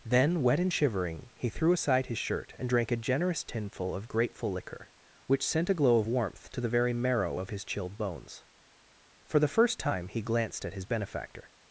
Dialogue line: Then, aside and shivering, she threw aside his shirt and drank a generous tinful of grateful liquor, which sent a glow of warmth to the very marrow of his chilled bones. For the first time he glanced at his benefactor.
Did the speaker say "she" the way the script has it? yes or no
no